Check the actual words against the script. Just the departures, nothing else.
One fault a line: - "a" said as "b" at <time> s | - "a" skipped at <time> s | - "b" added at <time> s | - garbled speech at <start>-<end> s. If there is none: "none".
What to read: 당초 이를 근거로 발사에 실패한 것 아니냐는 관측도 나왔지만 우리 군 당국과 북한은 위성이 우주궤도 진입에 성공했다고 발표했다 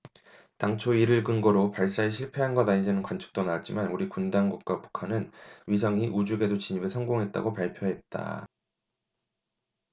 none